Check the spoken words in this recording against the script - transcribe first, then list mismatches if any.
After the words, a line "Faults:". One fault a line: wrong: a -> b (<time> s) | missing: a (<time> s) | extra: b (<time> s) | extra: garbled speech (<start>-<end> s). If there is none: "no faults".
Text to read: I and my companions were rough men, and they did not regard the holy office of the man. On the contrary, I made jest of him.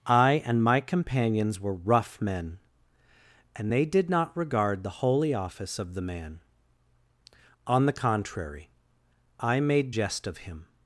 I and my companions were rough men, and they did not regard the holy office of the man. On the contrary, I made jest of him.
Faults:
no faults